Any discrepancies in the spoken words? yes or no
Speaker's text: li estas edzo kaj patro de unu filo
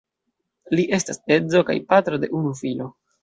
no